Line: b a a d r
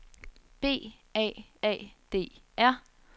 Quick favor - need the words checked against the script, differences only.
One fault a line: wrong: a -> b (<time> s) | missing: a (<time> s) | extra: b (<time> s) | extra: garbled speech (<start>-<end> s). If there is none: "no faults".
no faults